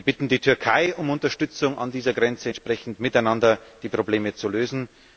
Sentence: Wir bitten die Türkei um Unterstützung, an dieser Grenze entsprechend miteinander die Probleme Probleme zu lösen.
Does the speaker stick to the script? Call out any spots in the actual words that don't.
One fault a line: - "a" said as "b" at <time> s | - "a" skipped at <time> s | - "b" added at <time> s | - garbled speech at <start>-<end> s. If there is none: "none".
- "Probleme" skipped at 4.3 s